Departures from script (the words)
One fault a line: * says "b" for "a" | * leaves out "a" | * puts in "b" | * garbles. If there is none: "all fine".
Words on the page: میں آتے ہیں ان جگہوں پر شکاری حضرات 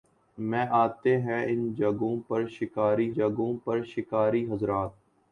* puts in "جگہوں پر شکاری"